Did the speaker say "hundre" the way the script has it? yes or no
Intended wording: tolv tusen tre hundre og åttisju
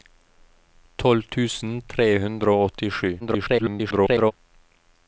yes